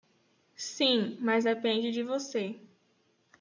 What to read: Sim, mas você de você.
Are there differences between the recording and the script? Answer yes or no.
yes